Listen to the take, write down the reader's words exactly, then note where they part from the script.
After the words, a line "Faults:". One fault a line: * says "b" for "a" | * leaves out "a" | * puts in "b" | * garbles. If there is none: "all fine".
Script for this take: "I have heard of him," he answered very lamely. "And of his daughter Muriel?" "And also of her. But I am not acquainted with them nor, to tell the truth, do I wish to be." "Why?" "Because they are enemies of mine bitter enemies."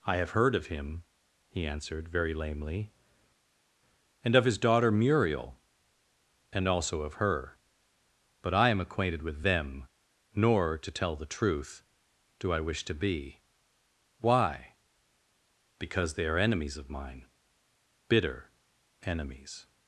"I have heard of him," he answered very lamely. "And of his daughter Muriel?" "And also of her. But I am acquainted with them nor, to tell the truth, do I wish to be." "Why?" "Because they are enemies of mine bitter enemies."
Faults:
* leaves out "not"